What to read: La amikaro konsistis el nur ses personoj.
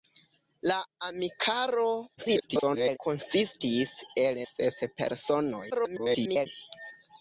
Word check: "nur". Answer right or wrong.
wrong